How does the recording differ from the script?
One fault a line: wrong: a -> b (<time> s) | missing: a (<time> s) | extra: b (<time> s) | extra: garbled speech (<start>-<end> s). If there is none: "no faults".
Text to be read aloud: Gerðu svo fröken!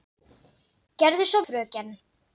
no faults